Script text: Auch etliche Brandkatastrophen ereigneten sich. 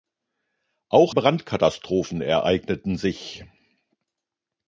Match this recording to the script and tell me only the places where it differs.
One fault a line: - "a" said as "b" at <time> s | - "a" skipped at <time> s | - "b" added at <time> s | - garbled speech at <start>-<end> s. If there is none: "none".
- "etliche" skipped at 1.1 s